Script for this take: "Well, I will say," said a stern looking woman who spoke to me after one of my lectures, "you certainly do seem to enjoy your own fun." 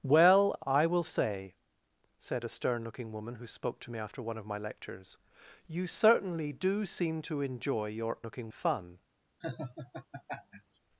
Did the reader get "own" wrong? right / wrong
wrong